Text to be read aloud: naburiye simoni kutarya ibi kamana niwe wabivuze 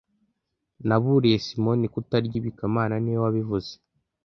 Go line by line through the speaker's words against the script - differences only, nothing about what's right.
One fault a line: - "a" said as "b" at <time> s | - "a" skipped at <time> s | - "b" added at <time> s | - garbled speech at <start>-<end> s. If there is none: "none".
none